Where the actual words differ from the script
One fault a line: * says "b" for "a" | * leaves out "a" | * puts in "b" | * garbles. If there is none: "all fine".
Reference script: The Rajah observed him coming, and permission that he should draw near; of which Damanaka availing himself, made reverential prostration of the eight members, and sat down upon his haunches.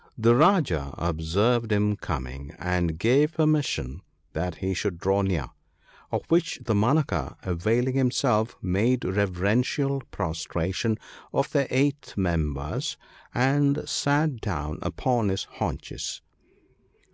* puts in "gave"